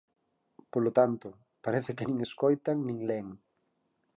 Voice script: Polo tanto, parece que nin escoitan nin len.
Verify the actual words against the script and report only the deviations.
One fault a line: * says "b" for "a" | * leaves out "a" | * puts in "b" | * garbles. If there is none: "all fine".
all fine